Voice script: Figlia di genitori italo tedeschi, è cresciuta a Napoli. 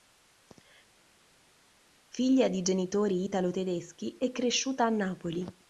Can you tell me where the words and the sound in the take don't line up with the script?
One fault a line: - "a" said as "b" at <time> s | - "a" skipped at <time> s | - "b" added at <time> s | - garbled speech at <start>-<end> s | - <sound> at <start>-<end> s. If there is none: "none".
none